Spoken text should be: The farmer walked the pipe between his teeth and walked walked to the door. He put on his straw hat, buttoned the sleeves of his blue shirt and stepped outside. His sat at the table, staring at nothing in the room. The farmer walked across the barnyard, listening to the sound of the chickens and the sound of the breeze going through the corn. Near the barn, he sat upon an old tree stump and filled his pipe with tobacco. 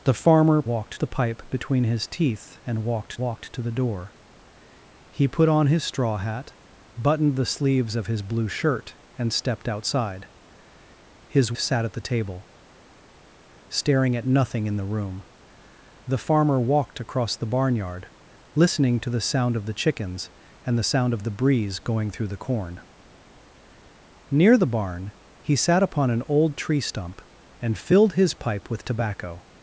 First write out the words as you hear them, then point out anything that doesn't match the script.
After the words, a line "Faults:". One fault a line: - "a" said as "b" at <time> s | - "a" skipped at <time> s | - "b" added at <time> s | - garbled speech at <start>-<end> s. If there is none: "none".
The farmer walked the pipe between his teeth and walked walked to the door. He put on his straw hat, buttoned the sleeves of his blue shirt and stepped outside. His sat at the table, staring at nothing in the room. The farmer walked across the barnyard, listening to the sound of the chickens and the sound of the breeze going through the corn. Near the barn, he sat upon an old tree stump and filled his pipe with tobacco.
Faults:
none